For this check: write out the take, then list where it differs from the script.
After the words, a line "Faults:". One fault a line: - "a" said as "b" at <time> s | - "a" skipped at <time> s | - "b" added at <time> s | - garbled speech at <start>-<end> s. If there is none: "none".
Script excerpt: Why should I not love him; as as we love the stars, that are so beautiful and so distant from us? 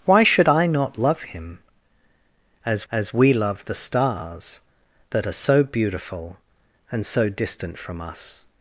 Why should I not love him; as as we love the stars, that are so beautiful and so distant from us?
Faults:
none